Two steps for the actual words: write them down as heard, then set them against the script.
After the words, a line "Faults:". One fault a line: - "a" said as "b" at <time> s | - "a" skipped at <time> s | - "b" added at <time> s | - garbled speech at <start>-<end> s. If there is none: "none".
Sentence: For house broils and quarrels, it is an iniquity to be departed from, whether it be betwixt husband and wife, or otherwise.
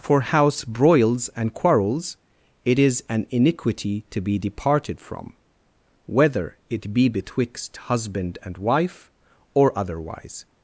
For house broils and quarrels, it is an iniquity to be departed from, whether it be betwixt husband and wife, or otherwise.
Faults:
none